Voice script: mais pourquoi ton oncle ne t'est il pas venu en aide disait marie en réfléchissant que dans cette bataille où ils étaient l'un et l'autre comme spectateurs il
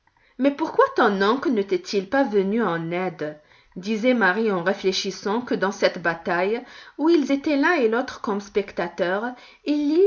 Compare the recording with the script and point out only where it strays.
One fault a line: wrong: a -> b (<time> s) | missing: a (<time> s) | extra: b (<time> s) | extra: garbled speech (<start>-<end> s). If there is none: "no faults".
no faults